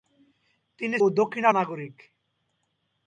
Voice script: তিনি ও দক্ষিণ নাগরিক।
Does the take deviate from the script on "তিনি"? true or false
false